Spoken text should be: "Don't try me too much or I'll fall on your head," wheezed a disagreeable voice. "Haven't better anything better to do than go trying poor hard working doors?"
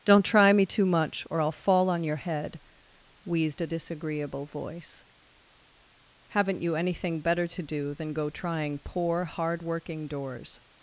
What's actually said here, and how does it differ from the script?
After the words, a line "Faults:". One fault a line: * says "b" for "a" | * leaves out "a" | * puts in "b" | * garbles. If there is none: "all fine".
"Don't try me too much or I'll fall on your head," wheezed a disagreeable voice. "Haven't you anything better to do than go trying poor hard working doors?"
Faults:
* says "you" for "better"